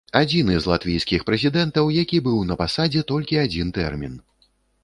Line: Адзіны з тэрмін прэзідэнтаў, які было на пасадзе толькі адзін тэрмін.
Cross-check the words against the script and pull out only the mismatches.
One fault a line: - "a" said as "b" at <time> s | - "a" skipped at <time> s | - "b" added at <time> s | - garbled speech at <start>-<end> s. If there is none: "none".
- "тэрмін" said as "латвійскіх" at 0.7 s
- "было" said as "быў" at 2.3 s